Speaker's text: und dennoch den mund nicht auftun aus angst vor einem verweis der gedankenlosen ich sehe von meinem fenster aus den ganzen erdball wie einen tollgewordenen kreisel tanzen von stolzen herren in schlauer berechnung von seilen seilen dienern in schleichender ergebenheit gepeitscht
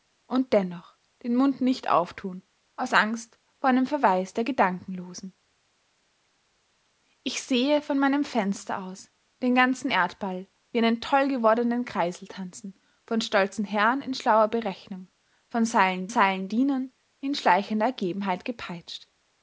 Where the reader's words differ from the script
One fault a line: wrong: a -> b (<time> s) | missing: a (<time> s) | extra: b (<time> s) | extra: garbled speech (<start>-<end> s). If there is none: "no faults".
no faults